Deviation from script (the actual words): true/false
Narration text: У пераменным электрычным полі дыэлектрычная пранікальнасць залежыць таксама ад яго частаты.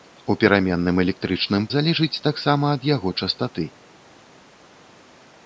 true